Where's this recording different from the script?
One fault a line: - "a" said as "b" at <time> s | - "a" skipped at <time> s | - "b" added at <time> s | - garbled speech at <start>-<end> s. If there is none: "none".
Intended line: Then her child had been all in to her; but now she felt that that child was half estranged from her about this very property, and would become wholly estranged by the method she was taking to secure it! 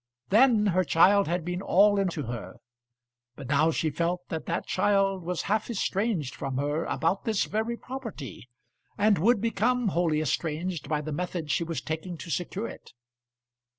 none